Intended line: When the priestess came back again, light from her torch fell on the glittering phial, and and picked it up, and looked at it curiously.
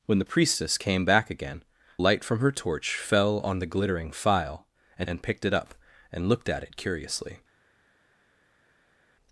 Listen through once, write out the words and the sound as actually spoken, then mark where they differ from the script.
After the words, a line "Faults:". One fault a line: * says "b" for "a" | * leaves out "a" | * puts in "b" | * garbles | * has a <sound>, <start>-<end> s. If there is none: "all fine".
When the priestess came back again, light from her torch fell on the glittering phial, and and picked it up, and looked at it curiously.
Faults:
all fine